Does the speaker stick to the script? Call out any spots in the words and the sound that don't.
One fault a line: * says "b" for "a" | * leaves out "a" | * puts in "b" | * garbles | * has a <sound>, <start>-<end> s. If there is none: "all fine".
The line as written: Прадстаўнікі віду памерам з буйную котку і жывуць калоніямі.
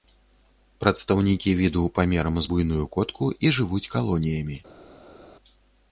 all fine